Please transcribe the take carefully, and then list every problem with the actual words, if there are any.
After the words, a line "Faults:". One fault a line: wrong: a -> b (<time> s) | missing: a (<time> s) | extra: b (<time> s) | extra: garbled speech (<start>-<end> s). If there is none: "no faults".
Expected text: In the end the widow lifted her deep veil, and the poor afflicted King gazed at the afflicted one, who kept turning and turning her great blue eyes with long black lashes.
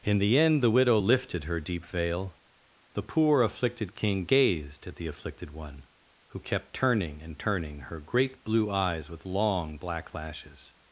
In the end the widow lifted her deep veil, the poor afflicted King gazed at the afflicted one, who kept turning and turning her great blue eyes with long black lashes.
Faults:
missing: and (2.4 s)